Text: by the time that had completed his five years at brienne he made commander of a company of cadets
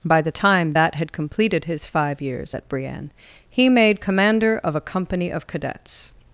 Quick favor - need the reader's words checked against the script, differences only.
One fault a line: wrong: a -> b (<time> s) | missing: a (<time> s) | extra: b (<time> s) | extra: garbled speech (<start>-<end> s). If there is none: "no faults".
no faults